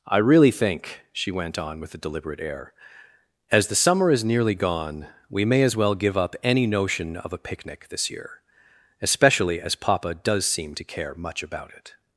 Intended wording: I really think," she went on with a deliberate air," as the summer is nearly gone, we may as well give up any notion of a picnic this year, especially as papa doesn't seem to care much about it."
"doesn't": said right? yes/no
no